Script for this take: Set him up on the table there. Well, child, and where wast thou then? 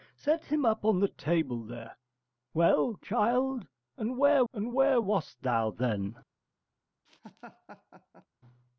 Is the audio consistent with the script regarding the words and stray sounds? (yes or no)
no